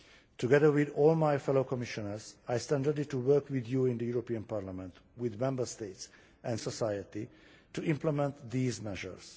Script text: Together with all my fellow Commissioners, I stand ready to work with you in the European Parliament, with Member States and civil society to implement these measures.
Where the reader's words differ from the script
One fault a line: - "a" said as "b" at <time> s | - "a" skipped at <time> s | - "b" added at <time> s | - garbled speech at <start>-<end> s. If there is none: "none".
- "civil" skipped at 6.6 s